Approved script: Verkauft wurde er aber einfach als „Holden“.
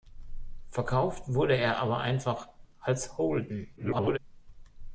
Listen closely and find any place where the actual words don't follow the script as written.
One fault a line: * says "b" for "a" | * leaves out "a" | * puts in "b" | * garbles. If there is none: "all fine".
* garbles